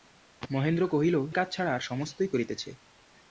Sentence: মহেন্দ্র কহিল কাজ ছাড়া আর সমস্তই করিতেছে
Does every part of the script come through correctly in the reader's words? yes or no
yes